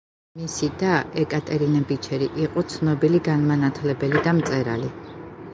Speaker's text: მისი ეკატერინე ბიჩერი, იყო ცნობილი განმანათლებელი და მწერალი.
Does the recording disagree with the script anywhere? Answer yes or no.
yes